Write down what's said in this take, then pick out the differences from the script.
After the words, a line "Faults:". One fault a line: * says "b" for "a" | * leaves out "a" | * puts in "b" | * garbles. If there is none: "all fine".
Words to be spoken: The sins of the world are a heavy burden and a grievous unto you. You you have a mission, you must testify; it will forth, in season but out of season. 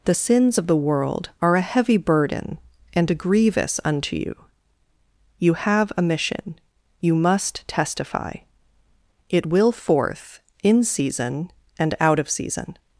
The sins of the world are a heavy burden and a grievous unto you. You have a mission, you must testify; it will forth, in season and out of season.
Faults:
* leaves out "you"
* says "and" for "but"